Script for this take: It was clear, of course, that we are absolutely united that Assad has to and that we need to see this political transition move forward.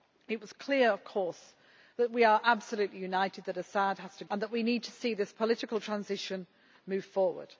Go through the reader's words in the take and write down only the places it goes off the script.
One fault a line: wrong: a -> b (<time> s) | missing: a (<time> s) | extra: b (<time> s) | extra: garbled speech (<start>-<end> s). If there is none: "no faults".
no faults